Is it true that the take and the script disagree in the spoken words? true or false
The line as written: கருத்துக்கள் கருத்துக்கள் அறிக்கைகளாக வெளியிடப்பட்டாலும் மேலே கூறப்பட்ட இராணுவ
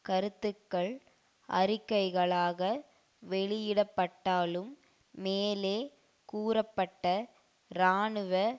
true